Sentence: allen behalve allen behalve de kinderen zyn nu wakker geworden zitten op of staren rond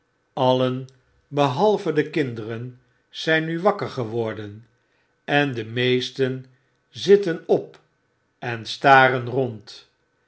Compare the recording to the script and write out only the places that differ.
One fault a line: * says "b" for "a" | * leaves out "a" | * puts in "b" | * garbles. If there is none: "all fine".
* leaves out "allen behalve"
* puts in "en de meesten"
* says "en" for "of"